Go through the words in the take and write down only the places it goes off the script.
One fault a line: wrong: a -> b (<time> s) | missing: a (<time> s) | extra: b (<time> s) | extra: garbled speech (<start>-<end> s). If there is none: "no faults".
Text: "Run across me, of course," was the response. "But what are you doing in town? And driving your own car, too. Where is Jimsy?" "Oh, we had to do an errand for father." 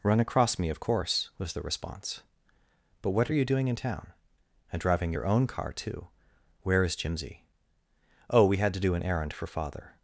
no faults